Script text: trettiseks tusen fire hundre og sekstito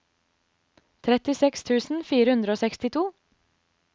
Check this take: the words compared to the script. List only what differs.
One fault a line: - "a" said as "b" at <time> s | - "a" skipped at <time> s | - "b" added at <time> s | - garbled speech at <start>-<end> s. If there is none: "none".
none